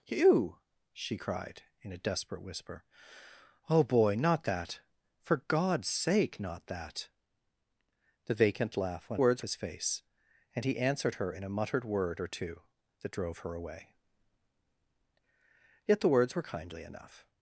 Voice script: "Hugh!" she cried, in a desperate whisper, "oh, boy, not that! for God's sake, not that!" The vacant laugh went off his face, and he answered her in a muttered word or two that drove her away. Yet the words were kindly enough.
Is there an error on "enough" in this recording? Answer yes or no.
no